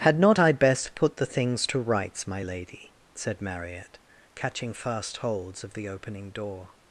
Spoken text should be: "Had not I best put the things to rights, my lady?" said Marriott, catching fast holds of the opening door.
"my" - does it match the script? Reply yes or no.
yes